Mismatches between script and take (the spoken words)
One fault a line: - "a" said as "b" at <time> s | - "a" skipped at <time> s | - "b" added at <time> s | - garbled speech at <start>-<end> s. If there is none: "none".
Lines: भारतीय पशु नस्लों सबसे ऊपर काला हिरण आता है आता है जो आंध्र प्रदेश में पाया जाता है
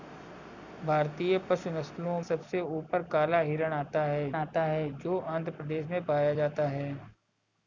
none